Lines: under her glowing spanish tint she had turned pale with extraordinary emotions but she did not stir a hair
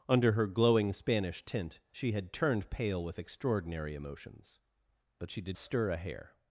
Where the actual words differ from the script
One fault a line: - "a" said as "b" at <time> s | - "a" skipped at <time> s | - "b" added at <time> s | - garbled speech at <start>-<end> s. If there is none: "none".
- "not" skipped at 5.6 s